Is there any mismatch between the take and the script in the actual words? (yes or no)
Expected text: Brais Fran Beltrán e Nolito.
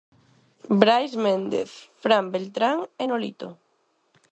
yes